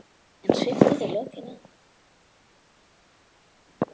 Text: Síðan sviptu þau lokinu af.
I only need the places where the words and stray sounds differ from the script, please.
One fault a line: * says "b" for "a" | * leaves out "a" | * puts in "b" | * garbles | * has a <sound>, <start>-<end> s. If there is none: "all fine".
all fine